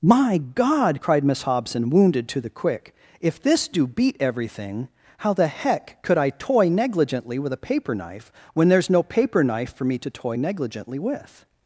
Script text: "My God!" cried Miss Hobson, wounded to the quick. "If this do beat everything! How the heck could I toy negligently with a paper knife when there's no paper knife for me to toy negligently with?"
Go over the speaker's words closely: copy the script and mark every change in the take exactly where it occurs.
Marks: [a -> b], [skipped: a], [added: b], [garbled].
"My God!" cried Miss Hobson, wounded to the quick. "If this do beat everything! How the heck could I toy negligently with a paper knife when there's no paper knife for me to toy negligently with?"